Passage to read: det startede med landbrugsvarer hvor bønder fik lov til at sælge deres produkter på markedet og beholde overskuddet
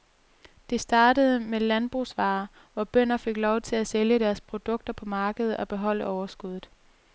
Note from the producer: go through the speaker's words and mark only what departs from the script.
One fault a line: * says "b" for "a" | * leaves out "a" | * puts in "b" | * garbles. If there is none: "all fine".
all fine